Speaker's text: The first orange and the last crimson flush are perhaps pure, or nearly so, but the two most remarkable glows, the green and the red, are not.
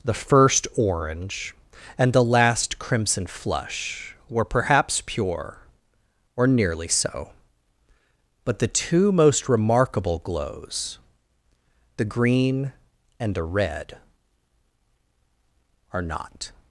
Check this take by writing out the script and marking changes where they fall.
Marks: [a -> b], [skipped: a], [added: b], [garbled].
The first orange and the last crimson flush [are -> were] perhaps pure, or nearly so, but the two most remarkable glows, the green and the red, are not.